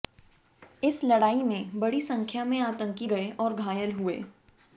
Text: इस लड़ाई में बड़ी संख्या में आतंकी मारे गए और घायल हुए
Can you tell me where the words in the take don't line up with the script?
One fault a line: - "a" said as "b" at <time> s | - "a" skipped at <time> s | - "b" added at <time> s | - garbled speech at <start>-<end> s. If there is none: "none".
- "मारे" skipped at 3.1 s